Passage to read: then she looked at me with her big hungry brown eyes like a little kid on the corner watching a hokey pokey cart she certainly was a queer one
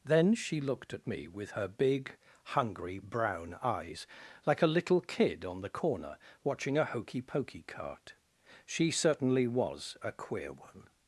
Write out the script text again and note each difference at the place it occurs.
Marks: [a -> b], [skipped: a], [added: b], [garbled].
then she looked at me with her big hungry brown eyes like a little kid on the corner watching a hokey pokey cart she certainly was a queer one